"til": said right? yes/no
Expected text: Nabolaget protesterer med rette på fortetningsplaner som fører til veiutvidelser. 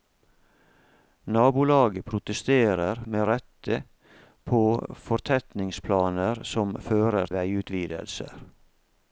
no